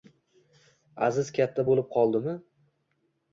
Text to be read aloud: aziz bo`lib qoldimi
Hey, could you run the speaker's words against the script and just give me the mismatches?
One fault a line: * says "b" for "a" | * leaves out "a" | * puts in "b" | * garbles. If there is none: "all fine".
* puts in "katta"